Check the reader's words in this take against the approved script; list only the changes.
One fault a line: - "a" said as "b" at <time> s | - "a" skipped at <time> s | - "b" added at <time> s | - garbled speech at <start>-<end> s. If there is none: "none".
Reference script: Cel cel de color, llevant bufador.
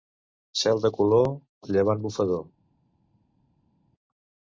- "cel" skipped at 0.8 s